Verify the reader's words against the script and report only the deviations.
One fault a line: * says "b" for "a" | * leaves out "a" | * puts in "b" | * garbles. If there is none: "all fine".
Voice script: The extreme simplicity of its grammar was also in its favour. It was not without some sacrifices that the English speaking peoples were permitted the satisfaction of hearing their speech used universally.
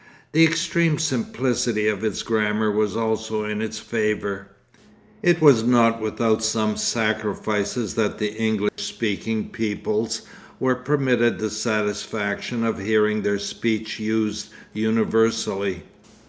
all fine